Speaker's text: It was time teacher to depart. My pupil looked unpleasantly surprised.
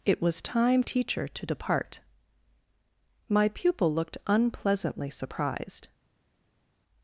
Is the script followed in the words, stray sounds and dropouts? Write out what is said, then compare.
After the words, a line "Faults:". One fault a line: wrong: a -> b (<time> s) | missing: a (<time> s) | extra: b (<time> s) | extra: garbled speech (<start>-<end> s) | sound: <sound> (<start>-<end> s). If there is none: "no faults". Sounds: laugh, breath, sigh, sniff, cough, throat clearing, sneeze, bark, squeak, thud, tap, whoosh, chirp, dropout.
It was time teacher to depart. My pupil looked unpleasantly surprised.
Faults:
no faults